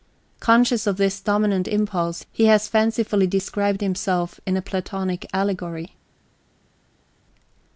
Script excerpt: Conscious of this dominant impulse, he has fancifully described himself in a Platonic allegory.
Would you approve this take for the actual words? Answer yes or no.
yes